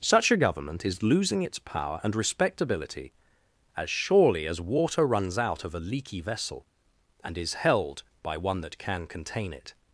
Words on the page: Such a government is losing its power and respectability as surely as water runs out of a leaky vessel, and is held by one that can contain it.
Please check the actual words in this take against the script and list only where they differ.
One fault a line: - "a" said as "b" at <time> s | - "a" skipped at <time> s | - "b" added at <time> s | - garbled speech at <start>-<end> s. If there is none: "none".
none